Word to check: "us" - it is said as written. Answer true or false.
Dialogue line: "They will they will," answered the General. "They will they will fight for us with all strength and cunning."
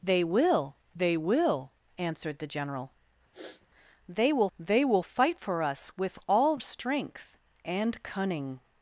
true